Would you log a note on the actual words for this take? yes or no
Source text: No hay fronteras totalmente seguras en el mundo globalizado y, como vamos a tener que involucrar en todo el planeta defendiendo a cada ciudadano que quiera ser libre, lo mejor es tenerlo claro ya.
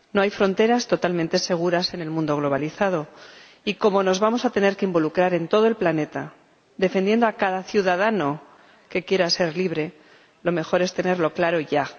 yes